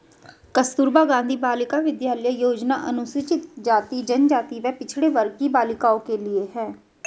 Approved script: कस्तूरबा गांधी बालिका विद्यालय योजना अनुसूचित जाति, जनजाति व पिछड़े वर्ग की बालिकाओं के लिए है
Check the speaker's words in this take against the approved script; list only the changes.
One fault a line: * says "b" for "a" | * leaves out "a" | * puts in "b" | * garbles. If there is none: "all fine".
all fine